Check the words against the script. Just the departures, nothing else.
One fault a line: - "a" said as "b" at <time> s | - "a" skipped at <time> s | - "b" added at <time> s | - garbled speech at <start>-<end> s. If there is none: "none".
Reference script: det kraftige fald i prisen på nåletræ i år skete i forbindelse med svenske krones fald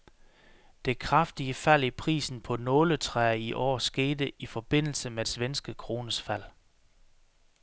none